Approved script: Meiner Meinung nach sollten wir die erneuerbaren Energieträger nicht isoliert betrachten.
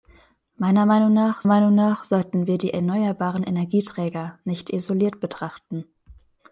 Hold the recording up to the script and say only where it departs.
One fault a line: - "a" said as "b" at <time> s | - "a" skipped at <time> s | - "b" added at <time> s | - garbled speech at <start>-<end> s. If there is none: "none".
- "Meinung nach" added at 1.5 s